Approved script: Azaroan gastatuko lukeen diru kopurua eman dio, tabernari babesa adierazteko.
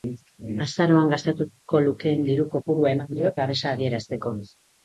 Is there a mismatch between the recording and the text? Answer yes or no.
yes